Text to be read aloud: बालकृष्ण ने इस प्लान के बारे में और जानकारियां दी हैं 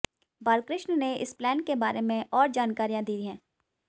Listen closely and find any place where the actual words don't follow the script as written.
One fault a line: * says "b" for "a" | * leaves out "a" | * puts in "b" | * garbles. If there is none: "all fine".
all fine